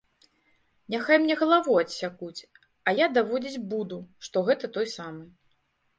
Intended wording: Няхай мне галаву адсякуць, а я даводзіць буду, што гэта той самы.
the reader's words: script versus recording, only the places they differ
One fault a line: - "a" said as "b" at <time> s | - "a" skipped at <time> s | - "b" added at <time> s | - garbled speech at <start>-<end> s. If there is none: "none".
none